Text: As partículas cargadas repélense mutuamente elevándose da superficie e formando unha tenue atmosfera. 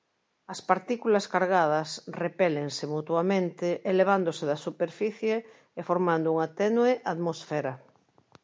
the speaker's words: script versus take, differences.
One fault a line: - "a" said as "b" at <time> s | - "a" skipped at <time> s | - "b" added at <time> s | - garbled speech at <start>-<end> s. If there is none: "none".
none